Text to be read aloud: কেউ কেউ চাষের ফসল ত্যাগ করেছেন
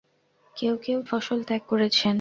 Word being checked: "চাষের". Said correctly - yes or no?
no